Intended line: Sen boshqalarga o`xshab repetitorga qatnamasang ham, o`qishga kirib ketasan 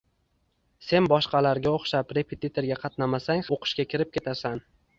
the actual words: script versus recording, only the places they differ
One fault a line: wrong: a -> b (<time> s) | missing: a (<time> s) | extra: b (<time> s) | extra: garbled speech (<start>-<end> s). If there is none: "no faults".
missing: ham (3.5 s)